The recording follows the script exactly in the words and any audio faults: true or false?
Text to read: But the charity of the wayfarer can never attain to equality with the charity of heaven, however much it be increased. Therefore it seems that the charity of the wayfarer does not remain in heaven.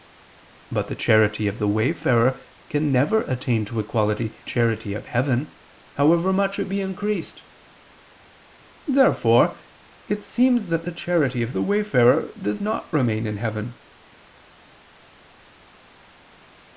false